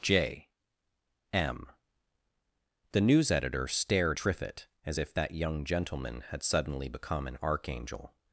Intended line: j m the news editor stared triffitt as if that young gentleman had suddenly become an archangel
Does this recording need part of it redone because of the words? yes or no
no